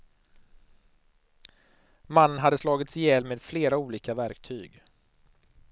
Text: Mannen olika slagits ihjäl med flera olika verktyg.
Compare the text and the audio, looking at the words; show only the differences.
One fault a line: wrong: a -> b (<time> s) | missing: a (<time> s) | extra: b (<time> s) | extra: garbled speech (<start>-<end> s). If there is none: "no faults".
wrong: olika -> hade (2.4 s)